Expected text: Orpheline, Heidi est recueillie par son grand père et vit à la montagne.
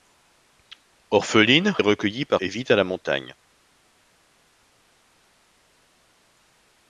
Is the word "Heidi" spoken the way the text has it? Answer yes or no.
no